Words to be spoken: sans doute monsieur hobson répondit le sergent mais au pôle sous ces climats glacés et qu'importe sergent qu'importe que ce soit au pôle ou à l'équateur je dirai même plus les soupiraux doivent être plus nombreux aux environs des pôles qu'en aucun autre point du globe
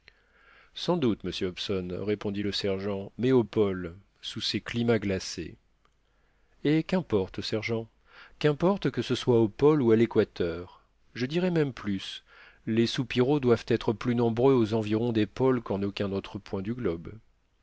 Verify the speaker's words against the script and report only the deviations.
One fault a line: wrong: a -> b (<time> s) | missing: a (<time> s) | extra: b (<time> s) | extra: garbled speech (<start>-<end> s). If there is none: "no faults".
no faults